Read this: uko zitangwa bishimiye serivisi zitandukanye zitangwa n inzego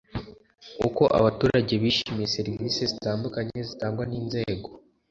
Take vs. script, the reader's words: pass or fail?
fail